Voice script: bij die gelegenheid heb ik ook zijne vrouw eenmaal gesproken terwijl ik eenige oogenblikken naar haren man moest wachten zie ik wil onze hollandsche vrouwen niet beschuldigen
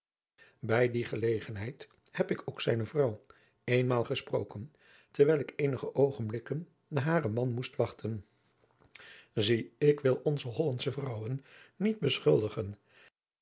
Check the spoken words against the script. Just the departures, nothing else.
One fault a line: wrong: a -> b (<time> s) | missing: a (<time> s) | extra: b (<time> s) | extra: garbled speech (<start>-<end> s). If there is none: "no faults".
no faults